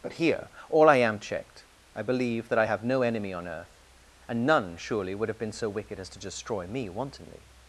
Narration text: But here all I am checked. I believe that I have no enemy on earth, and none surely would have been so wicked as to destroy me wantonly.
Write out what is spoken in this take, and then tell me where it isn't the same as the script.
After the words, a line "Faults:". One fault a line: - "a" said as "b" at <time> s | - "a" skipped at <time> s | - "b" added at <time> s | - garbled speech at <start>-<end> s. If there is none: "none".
But here all I am checked. I believe that I have no enemy on earth, and none surely would have been so wicked as to destroy me wantonly.
Faults:
none